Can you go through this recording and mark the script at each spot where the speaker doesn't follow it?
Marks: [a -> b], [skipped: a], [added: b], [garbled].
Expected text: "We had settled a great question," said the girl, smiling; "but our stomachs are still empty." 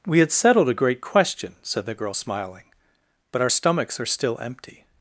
"We had settled a great question," said the girl, smiling; "but our stomachs are still empty."